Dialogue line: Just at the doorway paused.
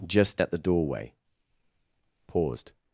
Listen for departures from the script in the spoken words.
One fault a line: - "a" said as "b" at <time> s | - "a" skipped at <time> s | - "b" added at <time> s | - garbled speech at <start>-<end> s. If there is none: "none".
none